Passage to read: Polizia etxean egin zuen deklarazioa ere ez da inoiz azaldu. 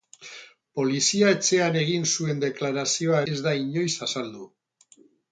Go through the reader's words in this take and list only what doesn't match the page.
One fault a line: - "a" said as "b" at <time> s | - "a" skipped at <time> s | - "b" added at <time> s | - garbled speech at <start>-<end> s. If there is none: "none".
- "ere" skipped at 3.2 s